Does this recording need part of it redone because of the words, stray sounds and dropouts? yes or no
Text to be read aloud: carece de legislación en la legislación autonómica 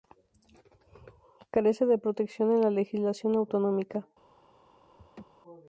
yes